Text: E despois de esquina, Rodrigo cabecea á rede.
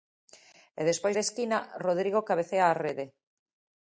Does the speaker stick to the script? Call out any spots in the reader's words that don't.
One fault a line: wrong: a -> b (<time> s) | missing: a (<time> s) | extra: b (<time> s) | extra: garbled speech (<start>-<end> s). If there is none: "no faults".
no faults